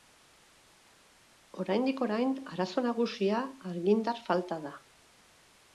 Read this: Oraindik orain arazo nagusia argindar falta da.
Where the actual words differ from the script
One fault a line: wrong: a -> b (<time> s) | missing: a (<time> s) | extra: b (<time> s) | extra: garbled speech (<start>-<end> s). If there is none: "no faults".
no faults